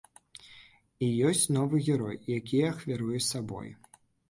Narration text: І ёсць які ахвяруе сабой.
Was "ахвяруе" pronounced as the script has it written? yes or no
yes